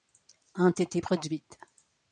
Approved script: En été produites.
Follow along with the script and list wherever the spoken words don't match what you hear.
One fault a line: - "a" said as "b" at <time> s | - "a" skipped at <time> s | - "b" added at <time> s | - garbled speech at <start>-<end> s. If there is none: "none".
none